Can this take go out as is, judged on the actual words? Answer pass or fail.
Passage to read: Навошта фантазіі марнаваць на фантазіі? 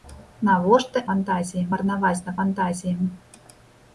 pass